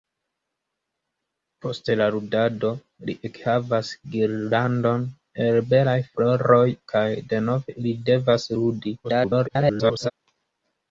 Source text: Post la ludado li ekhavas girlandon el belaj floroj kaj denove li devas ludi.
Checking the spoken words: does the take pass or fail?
fail